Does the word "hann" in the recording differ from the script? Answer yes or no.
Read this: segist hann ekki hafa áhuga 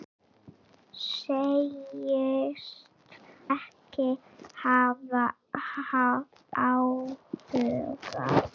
yes